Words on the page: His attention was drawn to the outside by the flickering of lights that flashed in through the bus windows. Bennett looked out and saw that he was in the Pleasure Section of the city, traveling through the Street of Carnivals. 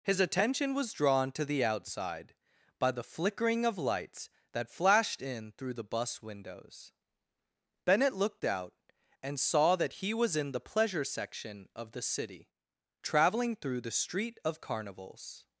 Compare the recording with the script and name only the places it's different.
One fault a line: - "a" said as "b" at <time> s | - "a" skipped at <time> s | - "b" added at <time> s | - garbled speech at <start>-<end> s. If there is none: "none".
none